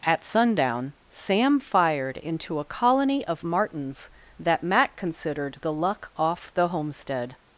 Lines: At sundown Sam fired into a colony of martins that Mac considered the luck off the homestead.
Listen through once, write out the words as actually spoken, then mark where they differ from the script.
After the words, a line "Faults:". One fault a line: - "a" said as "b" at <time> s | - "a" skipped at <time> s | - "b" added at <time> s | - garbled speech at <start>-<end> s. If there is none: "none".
At sundown Sam fired into a colony of martins that Mac considered the luck off the homestead.
Faults:
none